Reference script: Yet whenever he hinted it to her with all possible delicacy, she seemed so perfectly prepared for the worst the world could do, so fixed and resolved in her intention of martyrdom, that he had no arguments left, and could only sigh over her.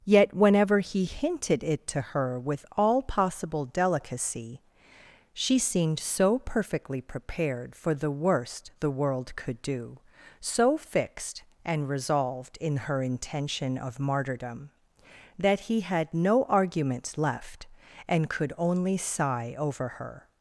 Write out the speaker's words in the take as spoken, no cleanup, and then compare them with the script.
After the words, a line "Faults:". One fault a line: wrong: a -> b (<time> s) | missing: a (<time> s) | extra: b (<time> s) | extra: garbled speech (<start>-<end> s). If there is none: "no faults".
Yet whenever he hinted it to her with all possible delicacy, she seemed so perfectly prepared for the worst the world could do, so fixed and resolved in her intention of martyrdom, that he had no arguments left, and could only sigh over her.
Faults:
no faults